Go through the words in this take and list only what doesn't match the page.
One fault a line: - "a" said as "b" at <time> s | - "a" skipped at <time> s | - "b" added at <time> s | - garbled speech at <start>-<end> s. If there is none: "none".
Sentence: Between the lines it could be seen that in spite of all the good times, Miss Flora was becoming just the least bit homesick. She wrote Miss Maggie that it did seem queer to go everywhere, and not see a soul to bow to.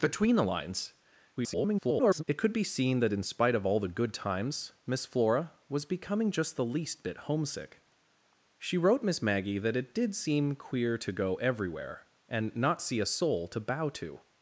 - garbled speech at 1.4-2.2 s